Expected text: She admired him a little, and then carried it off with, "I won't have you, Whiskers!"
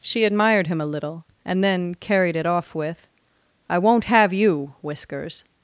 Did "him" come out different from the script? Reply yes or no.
no